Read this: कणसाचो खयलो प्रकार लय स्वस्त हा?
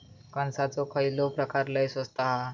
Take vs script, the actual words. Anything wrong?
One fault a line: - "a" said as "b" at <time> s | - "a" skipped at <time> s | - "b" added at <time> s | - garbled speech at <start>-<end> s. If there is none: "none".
none